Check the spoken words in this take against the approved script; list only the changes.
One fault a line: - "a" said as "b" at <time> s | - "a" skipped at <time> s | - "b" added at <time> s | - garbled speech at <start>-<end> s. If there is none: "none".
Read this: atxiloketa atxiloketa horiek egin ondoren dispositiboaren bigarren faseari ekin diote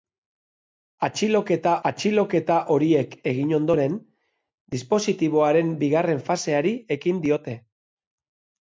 none